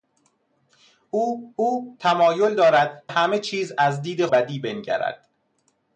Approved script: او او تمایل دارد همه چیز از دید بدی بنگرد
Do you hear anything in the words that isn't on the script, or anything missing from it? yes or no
no